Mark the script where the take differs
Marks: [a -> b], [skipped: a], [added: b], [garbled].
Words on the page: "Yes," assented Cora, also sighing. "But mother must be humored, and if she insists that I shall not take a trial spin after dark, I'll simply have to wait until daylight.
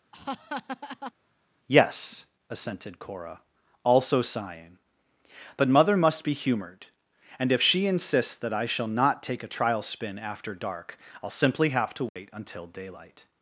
"Yes," assented Cora, also sighing. "But mother must be humored, and if she insists that I shall not take a trial spin after dark, I'll simply have to wait until daylight.